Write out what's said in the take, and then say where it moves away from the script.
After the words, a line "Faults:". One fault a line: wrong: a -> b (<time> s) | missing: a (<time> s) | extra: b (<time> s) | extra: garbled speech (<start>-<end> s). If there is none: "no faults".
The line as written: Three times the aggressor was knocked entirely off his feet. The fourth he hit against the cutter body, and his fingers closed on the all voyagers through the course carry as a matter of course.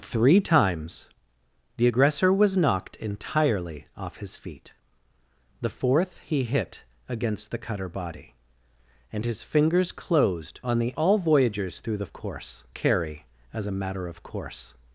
Three times the aggressor was knocked entirely off his feet. The fourth he hit against the cutter body, and his fingers closed on the all voyagers through the course carry as a matter of course.
Faults:
no faults